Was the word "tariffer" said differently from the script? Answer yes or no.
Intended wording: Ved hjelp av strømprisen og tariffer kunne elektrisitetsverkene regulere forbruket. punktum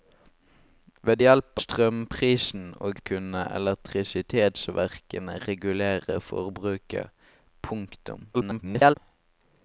yes